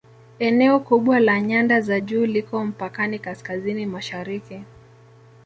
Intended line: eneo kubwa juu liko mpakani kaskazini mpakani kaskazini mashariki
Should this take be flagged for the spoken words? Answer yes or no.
yes